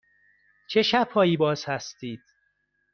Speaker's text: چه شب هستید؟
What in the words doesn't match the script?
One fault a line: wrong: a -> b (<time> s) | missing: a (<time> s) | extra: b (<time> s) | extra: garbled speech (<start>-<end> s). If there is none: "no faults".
extra: هایی باز (1.1 s)